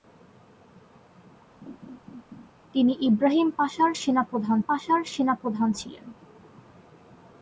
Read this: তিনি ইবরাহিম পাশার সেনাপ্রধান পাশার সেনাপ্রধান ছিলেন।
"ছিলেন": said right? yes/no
yes